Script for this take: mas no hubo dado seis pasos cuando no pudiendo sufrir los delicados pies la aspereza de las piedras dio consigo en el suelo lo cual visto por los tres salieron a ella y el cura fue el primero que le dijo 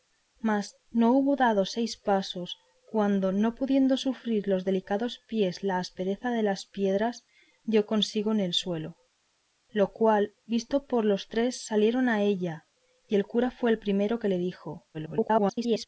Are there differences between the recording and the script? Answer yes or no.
yes